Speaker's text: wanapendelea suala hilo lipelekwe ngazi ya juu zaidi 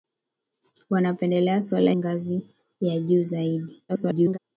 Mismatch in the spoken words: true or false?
true